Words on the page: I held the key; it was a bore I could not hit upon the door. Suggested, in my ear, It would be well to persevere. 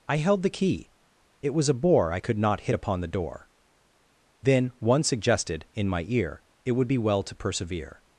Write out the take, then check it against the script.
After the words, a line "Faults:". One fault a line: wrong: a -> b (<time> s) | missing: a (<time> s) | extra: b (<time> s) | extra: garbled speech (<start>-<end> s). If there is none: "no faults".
I held the key; it was a bore I could not hit upon the door. Then One suggested, in my ear, It would be well to persevere.
Faults:
extra: Then One (4.4 s)